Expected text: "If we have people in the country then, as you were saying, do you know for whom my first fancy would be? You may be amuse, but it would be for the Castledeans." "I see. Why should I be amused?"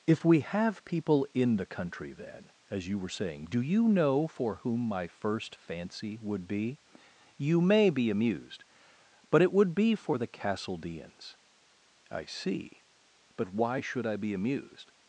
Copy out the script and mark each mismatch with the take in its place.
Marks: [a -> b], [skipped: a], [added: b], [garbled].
"If we have people in the country then, as you were saying, do you know for whom my first fancy would be? You may be [amuse, -> amused] but it would be for the Castledeans." "I see. [added: But] Why should I be amused?"